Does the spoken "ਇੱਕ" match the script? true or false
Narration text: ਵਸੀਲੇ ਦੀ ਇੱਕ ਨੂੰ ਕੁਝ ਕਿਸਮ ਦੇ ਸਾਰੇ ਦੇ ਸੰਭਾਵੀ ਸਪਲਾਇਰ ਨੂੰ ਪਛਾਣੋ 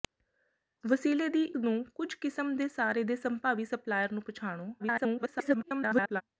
false